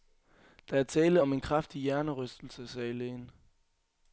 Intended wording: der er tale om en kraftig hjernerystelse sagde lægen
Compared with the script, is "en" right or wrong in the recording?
right